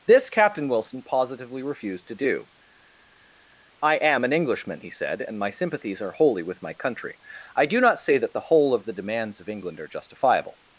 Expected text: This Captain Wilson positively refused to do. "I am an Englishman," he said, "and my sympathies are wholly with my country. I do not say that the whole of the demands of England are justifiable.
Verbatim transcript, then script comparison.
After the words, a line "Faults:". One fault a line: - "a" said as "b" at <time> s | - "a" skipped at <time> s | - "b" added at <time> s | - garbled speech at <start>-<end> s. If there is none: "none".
This Captain Wilson positively refused to do. "I am an Englishman," he said, "and my sympathies are wholly with my country. I do not say that the whole of the demands of England are justifiable.
Faults:
none